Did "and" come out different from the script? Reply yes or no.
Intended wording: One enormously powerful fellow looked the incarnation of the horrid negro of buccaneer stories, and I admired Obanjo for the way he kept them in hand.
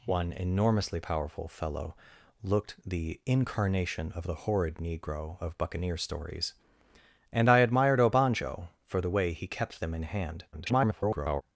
no